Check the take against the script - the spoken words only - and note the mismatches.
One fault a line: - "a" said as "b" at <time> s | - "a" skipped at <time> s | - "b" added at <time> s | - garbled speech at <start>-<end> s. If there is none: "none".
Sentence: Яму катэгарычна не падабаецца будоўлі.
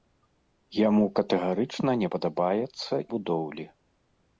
none